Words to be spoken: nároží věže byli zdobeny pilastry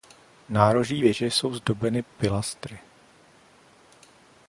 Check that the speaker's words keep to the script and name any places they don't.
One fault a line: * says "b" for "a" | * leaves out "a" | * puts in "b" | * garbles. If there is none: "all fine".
* says "jsou" for "byli"